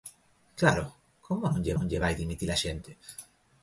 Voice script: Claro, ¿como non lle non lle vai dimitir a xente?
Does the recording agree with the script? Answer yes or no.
yes